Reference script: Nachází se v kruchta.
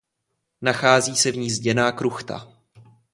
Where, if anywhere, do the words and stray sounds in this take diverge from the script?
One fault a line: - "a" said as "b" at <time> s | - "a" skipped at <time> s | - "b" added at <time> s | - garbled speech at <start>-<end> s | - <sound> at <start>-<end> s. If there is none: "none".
- "ní zděná" added at 1.4 s